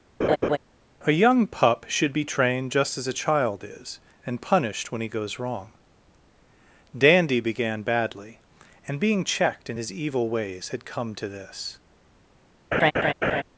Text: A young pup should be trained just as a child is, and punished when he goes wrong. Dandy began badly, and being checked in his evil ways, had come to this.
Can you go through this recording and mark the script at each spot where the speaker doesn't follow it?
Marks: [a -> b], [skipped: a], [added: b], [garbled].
A young pup should be trained just as a child is, and punished when he goes wrong. Dandy began badly, and being checked in his evil ways, had come to this.